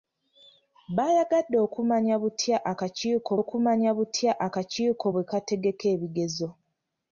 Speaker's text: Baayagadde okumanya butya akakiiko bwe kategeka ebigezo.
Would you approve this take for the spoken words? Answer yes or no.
no